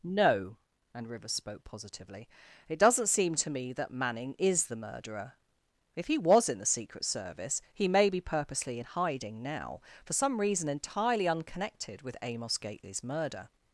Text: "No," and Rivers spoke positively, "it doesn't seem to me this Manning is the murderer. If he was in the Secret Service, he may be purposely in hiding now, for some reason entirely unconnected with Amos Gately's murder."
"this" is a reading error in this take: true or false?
true